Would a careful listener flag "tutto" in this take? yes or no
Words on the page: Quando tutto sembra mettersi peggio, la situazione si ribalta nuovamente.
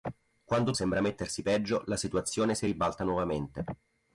yes